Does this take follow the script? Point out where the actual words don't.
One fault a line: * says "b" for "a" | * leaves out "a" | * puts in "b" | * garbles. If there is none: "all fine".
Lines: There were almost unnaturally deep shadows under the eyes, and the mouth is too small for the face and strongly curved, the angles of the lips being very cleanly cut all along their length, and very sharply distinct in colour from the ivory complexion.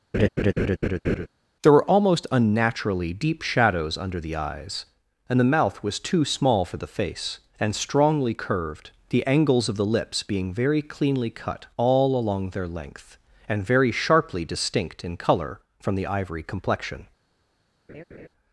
* says "was" for "is"